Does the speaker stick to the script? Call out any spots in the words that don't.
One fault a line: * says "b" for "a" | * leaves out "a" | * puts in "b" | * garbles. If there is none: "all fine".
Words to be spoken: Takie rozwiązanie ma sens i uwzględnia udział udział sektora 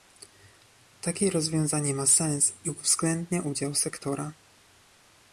* leaves out "udział"